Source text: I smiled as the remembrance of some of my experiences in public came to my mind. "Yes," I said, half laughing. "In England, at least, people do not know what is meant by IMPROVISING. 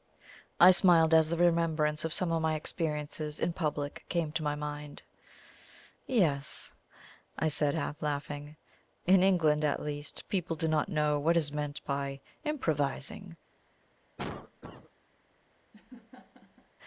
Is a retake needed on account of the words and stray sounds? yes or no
yes